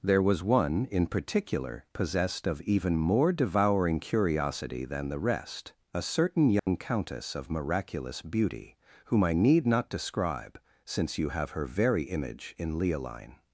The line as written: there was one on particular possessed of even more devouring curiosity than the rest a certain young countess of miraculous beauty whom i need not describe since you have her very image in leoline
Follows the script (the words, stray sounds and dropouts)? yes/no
no